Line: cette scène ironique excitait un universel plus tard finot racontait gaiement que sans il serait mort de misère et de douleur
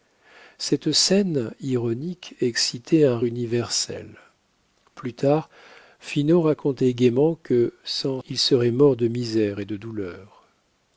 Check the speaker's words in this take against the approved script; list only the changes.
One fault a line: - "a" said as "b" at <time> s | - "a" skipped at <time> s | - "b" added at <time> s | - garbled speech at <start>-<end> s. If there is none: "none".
none